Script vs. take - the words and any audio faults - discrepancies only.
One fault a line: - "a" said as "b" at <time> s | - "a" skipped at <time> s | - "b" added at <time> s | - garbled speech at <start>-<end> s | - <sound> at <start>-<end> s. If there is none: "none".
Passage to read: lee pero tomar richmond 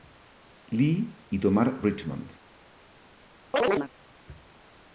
- "pero" said as "y" at 1.3 s
- chirp at 3.5-3.9 s